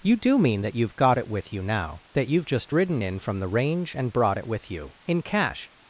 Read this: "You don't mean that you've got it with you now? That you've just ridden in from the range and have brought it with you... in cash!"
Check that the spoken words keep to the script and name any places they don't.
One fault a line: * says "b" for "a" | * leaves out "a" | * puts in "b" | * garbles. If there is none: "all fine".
* says "do" for "don't"
* leaves out "have"